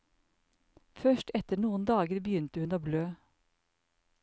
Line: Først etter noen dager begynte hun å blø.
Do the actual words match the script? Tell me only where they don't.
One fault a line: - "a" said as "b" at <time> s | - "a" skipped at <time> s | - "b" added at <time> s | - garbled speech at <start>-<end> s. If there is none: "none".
none